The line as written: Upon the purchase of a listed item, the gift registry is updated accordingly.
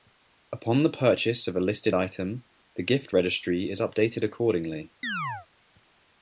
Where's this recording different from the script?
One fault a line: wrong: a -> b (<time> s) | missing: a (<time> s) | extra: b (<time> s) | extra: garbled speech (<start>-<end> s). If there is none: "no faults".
no faults